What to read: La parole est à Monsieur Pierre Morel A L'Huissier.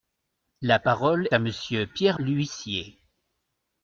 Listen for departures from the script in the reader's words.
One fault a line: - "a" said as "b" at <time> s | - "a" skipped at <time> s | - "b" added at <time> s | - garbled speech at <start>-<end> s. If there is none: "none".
- "est" skipped at 1.3 s
- "Morel A" skipped at 2.2 s